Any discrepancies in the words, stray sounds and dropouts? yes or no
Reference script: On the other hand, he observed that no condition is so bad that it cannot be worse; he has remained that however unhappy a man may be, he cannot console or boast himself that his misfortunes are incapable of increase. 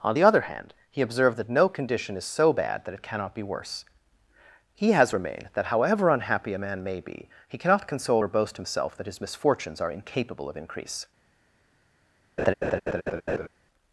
yes